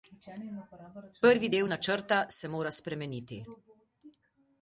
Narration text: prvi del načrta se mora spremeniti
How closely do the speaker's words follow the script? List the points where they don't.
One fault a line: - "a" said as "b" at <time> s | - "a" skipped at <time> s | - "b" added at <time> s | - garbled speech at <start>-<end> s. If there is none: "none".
none